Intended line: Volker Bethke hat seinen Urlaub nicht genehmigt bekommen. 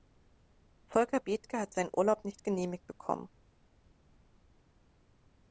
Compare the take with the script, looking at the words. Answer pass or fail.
pass